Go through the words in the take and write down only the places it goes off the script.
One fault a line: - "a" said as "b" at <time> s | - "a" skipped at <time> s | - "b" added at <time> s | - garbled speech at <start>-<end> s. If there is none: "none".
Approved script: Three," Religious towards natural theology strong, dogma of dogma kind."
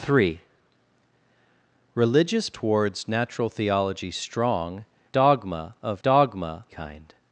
none